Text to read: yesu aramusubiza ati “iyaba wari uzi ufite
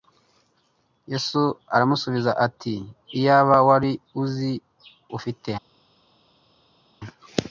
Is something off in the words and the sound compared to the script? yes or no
no